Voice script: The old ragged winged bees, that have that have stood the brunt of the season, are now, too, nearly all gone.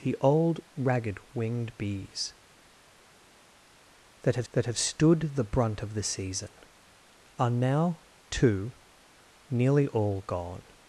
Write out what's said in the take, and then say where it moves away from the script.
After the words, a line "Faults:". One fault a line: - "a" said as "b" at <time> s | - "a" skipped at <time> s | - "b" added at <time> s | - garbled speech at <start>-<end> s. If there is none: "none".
The old ragged winged bees, that have that have stood the brunt of the season, are now, too, nearly all gone.
Faults:
none